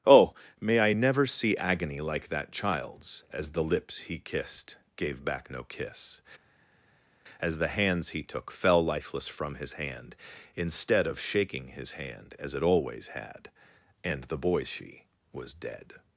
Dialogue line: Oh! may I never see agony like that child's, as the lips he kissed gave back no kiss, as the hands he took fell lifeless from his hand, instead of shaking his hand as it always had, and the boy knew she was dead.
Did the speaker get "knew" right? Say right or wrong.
wrong